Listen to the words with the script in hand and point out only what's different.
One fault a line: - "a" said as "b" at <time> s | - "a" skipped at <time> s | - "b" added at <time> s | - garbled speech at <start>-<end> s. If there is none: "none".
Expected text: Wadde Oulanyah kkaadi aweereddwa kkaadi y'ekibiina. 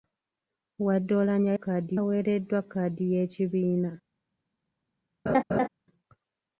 none